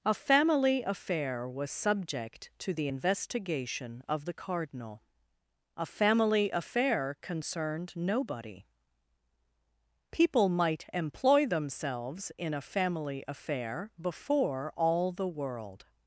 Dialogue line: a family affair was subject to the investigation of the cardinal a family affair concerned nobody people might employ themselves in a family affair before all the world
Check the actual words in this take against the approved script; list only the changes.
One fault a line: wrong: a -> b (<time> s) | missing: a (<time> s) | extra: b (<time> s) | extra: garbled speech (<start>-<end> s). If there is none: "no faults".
no faults